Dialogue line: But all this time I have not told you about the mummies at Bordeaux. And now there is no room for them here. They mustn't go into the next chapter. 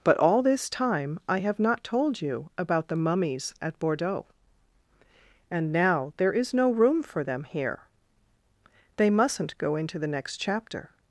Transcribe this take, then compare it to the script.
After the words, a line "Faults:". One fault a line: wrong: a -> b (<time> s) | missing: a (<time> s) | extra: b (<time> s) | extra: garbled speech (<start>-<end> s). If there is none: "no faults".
But all this time I have not told you about the mummies at Bordeaux. And now there is no room for them here. They mustn't go into the next chapter.
Faults:
no faults